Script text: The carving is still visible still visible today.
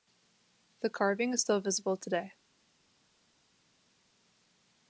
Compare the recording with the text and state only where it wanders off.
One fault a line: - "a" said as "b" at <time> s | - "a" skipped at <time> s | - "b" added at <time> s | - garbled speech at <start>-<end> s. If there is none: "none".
- "still visible" skipped at 1.9 s